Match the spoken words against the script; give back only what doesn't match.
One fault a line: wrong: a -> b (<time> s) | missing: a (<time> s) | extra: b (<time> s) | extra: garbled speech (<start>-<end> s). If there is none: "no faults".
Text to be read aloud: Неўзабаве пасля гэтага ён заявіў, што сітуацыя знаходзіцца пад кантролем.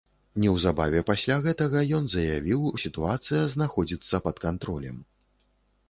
missing: што (2.6 s)